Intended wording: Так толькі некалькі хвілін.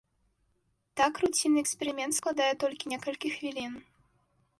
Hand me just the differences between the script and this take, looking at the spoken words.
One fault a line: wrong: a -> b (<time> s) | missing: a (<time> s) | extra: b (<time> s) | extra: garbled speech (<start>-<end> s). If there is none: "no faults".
extra: руцінны эксперымент складае (1.2 s)